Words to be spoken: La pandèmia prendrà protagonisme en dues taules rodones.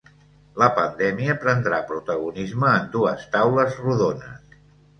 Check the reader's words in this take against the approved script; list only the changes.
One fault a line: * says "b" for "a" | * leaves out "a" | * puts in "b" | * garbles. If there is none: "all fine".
all fine